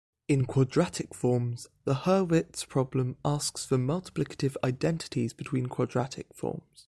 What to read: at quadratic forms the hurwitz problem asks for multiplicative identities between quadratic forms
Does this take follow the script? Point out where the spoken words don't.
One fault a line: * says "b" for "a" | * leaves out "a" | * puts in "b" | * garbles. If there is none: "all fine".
* says "in" for "at"